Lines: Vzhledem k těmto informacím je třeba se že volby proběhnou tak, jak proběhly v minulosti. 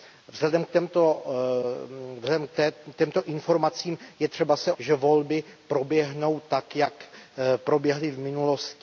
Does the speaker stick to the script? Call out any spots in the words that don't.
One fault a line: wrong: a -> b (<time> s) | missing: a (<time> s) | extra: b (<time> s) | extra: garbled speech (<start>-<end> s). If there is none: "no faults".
no faults